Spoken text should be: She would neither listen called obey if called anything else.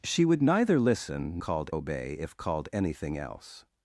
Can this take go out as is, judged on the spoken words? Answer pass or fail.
pass